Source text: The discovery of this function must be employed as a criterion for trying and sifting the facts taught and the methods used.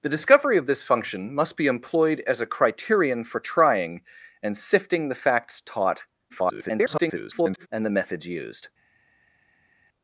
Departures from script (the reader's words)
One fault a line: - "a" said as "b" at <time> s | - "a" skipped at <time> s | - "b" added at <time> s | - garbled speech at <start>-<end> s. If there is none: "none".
- garbled speech at 6.3-7.7 s